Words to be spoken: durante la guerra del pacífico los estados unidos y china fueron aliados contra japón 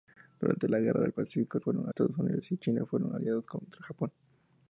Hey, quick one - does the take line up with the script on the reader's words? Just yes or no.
no